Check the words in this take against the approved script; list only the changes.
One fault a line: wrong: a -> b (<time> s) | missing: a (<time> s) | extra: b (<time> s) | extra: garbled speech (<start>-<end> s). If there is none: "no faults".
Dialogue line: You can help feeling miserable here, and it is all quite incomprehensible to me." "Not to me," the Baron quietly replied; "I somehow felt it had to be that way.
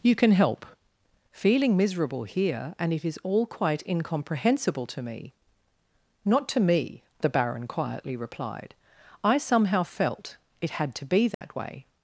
no faults